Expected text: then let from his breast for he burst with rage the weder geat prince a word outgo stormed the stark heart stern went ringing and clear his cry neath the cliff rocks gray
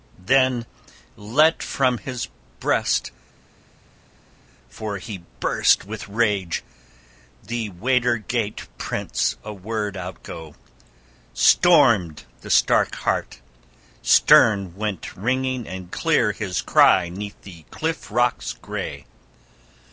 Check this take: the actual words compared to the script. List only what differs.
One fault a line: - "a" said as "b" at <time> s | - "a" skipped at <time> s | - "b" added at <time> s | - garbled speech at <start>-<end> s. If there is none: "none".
none